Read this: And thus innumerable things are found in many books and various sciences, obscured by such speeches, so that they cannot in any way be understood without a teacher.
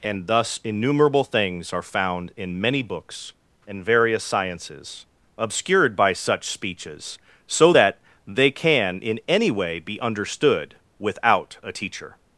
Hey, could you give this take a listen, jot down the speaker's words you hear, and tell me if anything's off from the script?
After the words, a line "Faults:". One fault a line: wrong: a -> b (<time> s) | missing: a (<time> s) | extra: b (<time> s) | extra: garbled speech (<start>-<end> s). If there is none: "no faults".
And thus innumerable things are found in many books and various sciences, obscured by such speeches, so that they can in any way be understood without a teacher.
Faults:
wrong: cannot -> can (8.5 s)